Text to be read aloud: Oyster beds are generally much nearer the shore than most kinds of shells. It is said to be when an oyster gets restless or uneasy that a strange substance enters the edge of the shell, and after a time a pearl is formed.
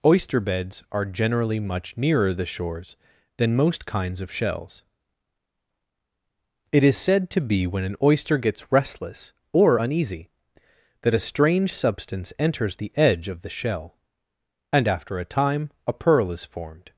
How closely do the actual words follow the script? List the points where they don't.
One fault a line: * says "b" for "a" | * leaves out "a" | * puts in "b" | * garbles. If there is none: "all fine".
* says "shores" for "shore"